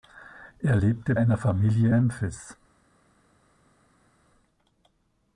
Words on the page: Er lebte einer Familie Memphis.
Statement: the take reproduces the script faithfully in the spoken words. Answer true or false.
true